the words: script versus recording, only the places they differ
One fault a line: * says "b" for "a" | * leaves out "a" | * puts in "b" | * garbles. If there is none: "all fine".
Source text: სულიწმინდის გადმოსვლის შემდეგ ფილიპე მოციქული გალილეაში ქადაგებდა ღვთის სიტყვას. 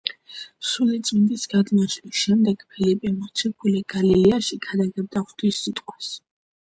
all fine